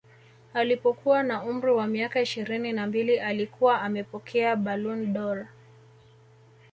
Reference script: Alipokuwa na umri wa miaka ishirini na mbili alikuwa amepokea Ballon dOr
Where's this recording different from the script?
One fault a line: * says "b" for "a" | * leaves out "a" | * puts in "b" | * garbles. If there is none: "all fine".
all fine